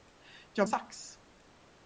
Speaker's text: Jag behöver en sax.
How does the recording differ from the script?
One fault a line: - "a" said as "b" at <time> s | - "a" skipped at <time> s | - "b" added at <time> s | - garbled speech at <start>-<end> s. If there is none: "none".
- "behöver en" skipped at 0.7 s